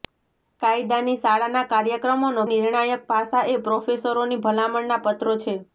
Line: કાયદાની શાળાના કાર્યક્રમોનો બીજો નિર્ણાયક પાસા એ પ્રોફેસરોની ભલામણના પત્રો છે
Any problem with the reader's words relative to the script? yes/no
yes